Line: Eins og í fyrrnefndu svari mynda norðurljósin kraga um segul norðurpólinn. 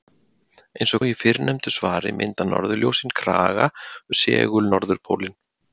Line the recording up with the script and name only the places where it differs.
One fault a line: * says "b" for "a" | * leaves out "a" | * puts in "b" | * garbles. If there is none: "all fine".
all fine